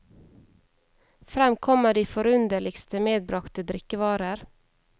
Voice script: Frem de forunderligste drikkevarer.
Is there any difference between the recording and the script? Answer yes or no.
yes